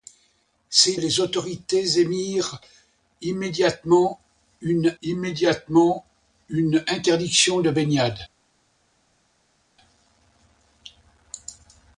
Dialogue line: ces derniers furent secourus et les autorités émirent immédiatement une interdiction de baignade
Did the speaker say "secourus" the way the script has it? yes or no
no